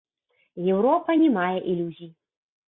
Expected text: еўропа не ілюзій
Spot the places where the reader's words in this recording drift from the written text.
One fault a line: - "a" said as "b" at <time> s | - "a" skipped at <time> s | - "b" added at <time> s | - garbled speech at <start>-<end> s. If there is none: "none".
- "мае" added at 1.4 s